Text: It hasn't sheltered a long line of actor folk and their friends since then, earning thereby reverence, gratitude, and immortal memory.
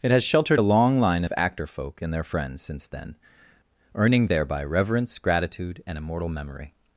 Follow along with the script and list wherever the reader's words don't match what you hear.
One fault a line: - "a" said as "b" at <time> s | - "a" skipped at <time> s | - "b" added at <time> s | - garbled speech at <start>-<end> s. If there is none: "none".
- "hasn't" said as "has" at 0.1 s